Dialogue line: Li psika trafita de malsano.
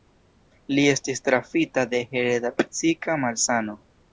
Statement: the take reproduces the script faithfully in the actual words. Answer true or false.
false